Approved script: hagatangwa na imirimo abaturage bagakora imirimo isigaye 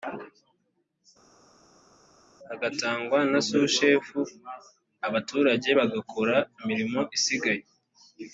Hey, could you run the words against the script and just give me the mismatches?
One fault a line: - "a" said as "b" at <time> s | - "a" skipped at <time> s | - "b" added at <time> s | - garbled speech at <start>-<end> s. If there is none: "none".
- "imirimo" said as "sushefu" at 3.5 s